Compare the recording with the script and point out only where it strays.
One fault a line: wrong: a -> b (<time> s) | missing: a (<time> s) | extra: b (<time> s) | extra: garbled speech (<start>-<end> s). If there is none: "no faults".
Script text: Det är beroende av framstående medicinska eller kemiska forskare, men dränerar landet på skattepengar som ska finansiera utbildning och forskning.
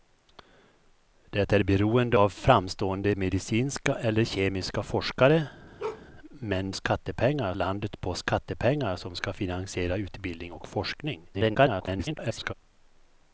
wrong: dränerar -> skattepengar (6.7 s)
extra: garbled speech (11.3-12.5 s)